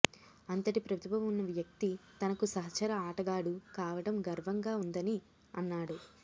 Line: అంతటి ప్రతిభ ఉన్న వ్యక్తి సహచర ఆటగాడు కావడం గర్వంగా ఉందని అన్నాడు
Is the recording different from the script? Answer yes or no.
yes